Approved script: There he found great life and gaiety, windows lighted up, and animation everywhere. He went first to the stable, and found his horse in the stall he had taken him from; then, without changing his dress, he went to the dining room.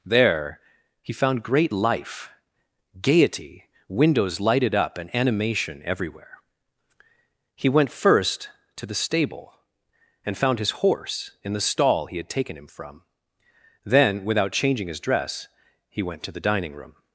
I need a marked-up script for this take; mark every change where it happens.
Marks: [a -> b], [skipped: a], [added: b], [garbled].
There he found great life [skipped: and] gaiety, windows lighted up, and animation everywhere. He went first to the stable, and found his horse in the stall he had taken him from; then, without changing his dress, he went to the dining room.